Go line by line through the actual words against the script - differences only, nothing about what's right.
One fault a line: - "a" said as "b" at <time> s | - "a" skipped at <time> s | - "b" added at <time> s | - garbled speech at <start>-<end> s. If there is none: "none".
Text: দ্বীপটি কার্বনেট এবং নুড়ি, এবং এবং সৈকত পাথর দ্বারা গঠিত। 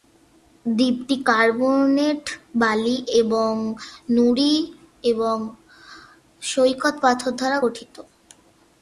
- "বালি" added at 2.5 s
- "এবং" skipped at 5.4 s